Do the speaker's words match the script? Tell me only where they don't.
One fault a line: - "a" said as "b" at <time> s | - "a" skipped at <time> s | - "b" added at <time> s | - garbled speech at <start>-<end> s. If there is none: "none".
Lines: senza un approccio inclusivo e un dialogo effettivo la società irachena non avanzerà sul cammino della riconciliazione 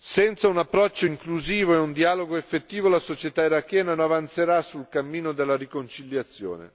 - "non" skipped at 3.9 s